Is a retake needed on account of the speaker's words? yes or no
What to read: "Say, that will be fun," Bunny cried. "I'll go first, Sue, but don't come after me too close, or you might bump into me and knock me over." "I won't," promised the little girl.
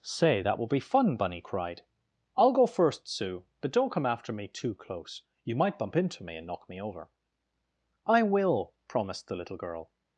yes